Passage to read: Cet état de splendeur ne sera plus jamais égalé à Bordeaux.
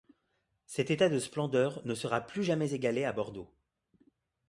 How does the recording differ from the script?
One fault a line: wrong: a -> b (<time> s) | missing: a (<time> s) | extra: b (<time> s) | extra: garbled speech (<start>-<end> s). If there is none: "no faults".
no faults